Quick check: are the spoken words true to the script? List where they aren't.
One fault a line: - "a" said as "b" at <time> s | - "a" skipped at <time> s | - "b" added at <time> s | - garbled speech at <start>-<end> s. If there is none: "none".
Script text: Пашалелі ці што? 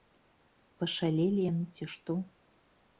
- "яны" added at 1.5 s